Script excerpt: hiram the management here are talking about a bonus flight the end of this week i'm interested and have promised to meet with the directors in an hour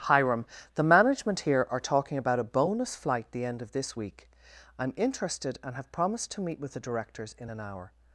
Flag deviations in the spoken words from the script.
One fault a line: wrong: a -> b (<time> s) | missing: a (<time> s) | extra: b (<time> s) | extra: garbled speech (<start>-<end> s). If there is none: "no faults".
no faults